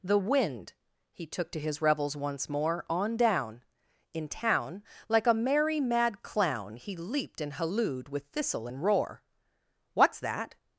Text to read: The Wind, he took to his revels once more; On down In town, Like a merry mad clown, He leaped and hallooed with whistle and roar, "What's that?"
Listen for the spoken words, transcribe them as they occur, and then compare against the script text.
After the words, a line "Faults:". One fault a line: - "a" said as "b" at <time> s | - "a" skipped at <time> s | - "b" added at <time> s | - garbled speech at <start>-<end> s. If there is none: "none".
The Wind, he took to his revels once more; On down In town, Like a merry mad clown, He leaped and hallooed with thistle and roar, "What's that?"
Faults:
- "whistle" said as "thistle" at 8.3 s